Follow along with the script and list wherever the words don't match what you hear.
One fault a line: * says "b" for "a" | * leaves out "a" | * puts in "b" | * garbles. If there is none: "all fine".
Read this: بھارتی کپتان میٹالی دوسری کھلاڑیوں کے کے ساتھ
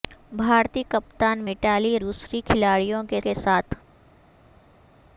all fine